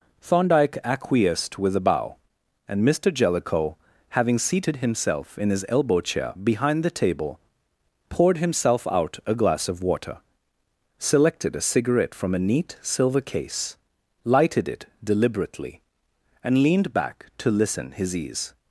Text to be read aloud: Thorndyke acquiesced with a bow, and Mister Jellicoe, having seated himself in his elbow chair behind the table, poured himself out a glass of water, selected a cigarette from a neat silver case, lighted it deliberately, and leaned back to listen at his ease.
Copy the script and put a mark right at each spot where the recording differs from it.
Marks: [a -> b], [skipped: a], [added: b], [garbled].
Thorndyke acquiesced with a bow, and Mister Jellicoe, having seated himself in his elbow chair behind the table, poured himself out a glass of water, selected a cigarette from a neat silver case, lighted it deliberately, and leaned back to listen [skipped: at] his ease.